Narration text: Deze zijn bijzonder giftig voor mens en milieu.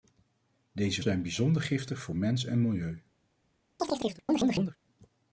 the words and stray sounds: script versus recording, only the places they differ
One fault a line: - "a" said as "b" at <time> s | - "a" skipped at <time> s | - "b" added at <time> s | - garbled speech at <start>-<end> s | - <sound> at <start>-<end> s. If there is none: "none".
- chirp at 3.8-4.8 s